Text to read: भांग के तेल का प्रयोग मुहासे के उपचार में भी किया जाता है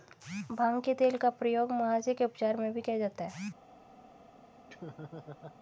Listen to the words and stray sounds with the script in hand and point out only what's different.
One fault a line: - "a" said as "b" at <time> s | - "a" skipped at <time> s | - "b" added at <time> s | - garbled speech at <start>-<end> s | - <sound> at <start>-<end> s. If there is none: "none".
- laugh at 4.7-5.6 s